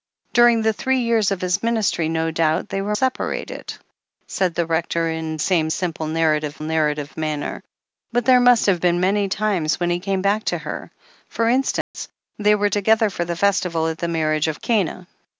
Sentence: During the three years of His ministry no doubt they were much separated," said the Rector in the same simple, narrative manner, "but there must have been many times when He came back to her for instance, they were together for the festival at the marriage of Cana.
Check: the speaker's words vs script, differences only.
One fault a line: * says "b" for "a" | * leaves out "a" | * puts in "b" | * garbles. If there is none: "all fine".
* leaves out "much"
* leaves out "the"
* puts in "narrative"